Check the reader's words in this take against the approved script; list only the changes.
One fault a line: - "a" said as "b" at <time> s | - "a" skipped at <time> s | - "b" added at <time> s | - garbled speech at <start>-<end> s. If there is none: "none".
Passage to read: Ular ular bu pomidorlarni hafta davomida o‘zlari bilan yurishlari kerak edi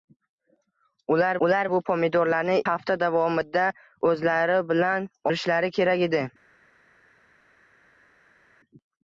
none